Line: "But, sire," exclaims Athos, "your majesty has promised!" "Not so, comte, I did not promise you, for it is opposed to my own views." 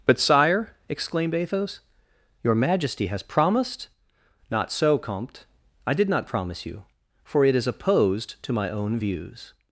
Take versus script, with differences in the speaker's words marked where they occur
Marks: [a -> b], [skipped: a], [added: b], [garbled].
"But, sire," [exclaims -> exclaimed] Athos, "your majesty has promised!" "Not so, comte, I did not promise you, for it is opposed to my own views."